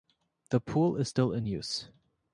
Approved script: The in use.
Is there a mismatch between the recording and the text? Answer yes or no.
yes